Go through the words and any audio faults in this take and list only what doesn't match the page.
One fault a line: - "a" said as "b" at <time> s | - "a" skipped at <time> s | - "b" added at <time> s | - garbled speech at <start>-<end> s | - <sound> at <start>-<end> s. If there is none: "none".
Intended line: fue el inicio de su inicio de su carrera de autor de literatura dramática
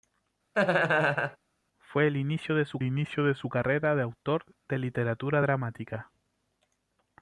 - laugh at 0.5-1.4 s